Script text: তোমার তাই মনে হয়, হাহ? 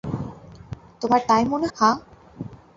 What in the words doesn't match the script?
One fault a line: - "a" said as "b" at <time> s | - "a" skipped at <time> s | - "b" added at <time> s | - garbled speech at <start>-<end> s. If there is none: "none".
- "হয়" skipped at 1.7 s